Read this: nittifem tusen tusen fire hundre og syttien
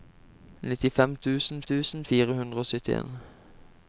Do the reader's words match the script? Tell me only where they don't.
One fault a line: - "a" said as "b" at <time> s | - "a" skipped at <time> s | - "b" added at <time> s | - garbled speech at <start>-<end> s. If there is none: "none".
none